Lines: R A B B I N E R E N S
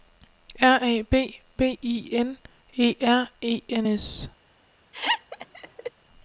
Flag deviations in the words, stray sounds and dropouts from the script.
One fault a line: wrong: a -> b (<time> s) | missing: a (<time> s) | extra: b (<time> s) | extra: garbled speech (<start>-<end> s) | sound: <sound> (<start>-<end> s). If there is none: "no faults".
sound: laugh (4.9-5.9 s)